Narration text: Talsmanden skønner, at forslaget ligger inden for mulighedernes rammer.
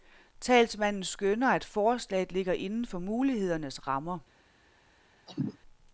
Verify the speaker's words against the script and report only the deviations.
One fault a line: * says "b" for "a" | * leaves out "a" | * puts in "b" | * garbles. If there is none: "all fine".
all fine